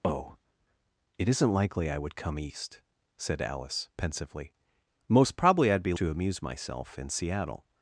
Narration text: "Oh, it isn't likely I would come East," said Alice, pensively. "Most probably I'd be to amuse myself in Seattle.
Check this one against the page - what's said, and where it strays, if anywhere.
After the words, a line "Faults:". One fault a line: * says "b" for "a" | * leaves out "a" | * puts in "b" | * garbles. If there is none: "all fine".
"Oh, it isn't likely I would come East," said Alice, pensively. "Most probably I'd be to amuse myself in Seattle.
Faults:
all fine